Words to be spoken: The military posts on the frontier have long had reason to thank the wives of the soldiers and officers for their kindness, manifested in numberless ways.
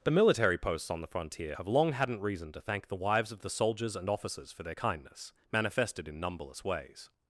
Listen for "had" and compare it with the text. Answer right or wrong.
wrong